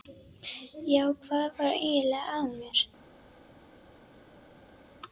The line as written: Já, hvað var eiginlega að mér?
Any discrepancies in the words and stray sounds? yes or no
no